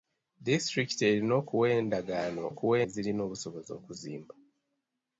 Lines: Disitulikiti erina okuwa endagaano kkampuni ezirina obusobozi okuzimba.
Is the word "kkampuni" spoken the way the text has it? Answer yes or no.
no